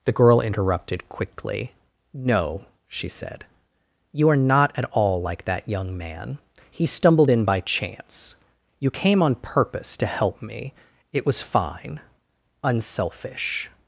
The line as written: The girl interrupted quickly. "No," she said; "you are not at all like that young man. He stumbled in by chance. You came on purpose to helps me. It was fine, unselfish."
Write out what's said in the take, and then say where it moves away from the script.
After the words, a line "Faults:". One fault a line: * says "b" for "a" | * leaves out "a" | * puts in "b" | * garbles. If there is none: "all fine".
The girl interrupted quickly. "No," she said; "you are not at all like that young man. He stumbled in by chance. You came on purpose to help me. It was fine, unselfish."
Faults:
* says "help" for "helps"